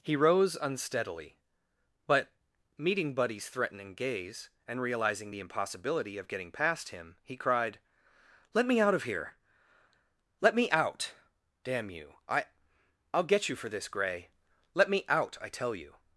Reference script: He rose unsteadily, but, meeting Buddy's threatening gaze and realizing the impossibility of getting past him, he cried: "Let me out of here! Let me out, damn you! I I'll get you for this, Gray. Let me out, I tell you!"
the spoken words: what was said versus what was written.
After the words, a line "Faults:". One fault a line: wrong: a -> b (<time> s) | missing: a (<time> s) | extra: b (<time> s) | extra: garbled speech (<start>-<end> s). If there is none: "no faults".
He rose unsteadily, but, meeting Buddy's threatening gaze and realizing the impossibility of getting past him, he cried: "Let me out of here! Let me out, damn you! I I'll get you for this, Gray. Let me out, I tell you!"
Faults:
no faults